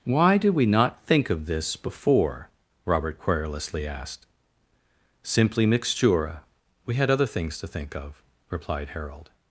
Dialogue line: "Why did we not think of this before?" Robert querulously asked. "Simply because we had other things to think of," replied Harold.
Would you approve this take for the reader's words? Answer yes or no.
no